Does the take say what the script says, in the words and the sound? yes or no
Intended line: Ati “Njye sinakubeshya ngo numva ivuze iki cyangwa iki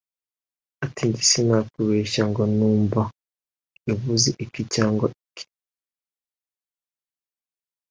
yes